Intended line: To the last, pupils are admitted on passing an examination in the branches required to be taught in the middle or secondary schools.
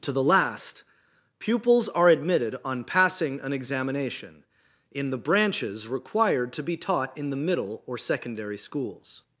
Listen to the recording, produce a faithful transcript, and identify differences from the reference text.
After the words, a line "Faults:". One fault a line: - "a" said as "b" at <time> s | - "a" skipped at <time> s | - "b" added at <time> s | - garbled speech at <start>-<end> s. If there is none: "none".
To the last, pupils are admitted on passing an examination in the branches required to be taught in the middle or secondary schools.
Faults:
none